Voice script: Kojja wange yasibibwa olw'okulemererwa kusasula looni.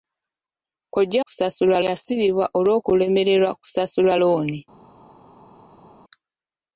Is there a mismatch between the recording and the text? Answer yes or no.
yes